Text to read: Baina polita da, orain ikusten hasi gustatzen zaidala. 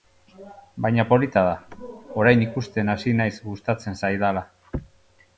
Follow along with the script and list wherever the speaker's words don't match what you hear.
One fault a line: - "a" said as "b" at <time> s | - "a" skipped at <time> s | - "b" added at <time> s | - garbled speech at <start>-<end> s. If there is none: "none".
- "naiz" added at 3.2 s